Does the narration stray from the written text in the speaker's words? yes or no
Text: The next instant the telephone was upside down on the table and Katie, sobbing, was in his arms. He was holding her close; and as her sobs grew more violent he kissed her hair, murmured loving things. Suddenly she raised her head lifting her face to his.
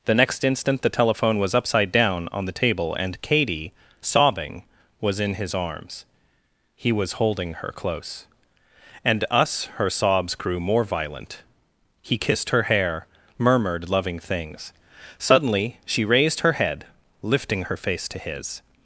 yes